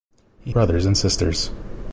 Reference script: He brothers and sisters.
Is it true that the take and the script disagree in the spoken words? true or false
false